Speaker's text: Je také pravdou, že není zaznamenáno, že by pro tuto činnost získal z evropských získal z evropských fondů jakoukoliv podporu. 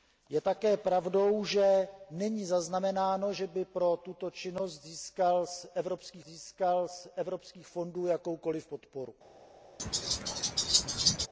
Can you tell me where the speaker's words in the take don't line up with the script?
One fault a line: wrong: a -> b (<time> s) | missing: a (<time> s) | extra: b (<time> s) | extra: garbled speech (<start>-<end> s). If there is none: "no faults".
no faults